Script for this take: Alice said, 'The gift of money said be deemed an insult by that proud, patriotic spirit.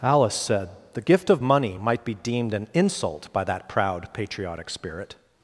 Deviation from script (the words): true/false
true